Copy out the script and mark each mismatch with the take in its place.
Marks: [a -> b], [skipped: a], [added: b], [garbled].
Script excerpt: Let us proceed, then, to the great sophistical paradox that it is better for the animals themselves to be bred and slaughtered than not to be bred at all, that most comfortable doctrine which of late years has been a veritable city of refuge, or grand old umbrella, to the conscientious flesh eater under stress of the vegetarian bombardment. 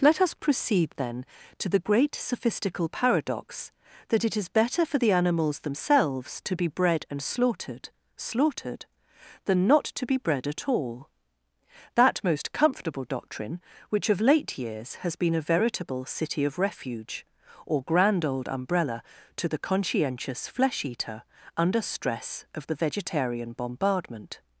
Let us proceed, then, to the great sophistical paradox that it is better for the animals themselves to be bred and slaughtered [added: slaughtered] than not to be bred at all, that most comfortable doctrine which of late years has been a veritable city of refuge, or grand old umbrella, to the conscientious flesh eater under stress of the vegetarian bombardment.